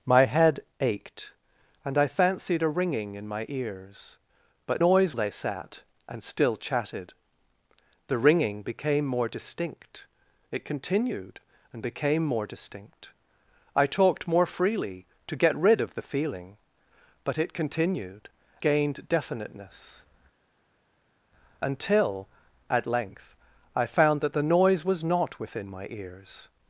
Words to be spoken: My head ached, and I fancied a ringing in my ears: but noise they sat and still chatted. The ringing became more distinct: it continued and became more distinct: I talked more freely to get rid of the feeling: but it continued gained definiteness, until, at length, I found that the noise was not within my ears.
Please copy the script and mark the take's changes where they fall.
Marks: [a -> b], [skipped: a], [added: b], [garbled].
My head ached, and I fancied a ringing in my ears: but noise they sat and still chatted. The ringing became more distinct: it continued and became more distinct: I talked more freely to get rid of the feeling: but it continued gained definiteness, until, at length, I found that the noise was not within my ears.